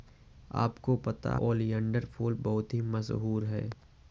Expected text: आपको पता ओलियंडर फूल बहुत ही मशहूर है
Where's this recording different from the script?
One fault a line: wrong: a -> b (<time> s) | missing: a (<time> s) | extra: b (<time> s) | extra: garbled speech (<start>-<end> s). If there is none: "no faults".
no faults